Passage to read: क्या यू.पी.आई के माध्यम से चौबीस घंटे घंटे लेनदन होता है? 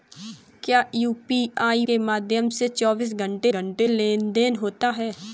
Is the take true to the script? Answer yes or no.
yes